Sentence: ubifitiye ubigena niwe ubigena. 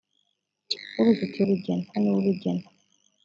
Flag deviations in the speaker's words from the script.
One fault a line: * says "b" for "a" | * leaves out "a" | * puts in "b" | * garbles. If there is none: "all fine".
all fine